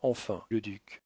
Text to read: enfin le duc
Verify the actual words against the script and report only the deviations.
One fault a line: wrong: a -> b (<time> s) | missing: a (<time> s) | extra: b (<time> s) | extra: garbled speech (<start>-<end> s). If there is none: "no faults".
no faults